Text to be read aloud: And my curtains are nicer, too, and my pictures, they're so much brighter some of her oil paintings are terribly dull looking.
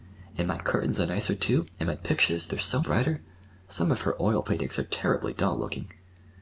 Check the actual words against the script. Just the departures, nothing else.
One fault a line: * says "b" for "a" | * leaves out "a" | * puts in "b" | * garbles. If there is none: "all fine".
* leaves out "much"